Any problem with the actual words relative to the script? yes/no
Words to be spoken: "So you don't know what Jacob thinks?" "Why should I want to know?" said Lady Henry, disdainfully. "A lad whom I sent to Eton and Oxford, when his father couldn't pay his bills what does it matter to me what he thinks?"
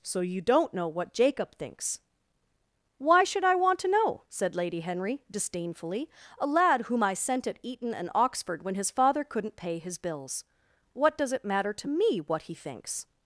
yes